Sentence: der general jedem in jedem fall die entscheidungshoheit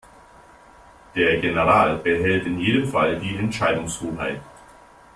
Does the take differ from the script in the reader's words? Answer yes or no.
yes